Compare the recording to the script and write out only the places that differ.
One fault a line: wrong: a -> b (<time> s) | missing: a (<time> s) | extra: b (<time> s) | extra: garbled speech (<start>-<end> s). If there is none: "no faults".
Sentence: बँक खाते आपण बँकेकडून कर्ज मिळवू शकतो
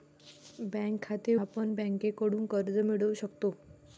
no faults